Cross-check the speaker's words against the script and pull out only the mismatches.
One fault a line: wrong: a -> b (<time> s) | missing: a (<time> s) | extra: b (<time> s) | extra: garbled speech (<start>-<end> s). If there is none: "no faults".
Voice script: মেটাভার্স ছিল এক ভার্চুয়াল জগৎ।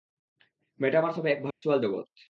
wrong: ছিল -> হবে (1.2 s)